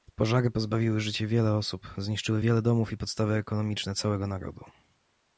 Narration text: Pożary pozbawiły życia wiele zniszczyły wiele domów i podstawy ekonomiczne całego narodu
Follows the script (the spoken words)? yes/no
no